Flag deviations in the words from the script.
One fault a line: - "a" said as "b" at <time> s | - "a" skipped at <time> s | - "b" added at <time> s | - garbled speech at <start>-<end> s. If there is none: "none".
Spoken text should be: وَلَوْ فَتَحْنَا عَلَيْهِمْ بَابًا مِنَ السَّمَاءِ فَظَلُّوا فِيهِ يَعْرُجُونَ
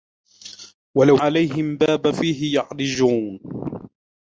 - "فَتَحْنَا" skipped at 1.2 s
- "مِنَ السَّمَاءِ فَظَلُّوا" skipped at 2.1 s